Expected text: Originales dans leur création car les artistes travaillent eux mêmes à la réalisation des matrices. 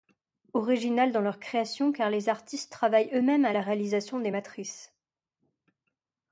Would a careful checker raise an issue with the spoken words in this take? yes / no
no